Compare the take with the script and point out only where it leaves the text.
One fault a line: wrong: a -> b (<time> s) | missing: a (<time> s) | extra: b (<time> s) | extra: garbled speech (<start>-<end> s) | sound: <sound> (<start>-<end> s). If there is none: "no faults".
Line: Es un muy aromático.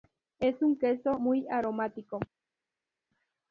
extra: queso (0.8 s)